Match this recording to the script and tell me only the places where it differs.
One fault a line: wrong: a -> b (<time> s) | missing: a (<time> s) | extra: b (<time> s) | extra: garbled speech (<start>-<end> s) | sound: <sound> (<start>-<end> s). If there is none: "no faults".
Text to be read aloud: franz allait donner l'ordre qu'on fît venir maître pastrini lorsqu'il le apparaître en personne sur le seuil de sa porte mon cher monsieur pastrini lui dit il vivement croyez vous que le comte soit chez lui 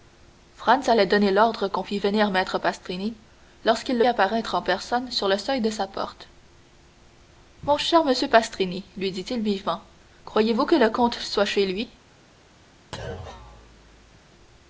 sound: thud (12.9-14.3 s)